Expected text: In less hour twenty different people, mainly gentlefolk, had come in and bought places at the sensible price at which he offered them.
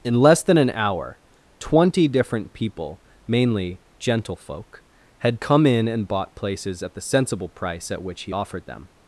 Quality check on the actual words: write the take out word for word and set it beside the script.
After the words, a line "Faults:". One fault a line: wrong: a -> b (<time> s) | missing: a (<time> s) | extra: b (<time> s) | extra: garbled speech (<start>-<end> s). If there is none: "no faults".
In less than an hour twenty different people, mainly gentlefolk, had come in and bought places at the sensible price at which he offered them.
Faults:
extra: than an (0.4 s)